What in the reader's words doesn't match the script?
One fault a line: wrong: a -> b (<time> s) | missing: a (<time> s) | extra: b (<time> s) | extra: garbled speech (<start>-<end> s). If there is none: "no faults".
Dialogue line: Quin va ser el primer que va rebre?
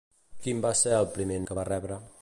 no faults